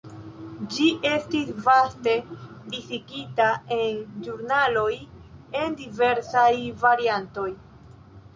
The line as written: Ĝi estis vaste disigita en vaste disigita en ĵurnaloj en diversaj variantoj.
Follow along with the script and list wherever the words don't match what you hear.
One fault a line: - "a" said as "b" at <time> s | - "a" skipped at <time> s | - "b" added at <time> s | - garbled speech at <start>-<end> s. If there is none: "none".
- "vaste disigita en" skipped at 4.0 s